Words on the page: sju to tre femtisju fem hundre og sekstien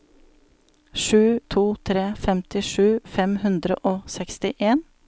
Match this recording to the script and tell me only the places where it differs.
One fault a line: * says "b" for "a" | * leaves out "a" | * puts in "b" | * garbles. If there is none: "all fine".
all fine